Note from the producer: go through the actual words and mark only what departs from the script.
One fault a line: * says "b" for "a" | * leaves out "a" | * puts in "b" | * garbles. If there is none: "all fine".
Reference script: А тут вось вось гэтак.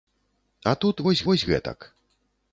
all fine